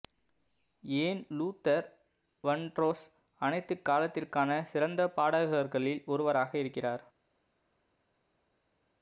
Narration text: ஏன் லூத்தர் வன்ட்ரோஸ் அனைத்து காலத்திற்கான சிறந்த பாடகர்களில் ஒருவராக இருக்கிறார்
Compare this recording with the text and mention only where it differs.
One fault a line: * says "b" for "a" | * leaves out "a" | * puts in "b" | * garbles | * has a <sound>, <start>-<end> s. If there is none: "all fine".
all fine